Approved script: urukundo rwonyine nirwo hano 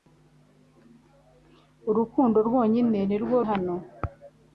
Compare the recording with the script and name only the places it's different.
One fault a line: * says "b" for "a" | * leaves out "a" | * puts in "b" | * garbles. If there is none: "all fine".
all fine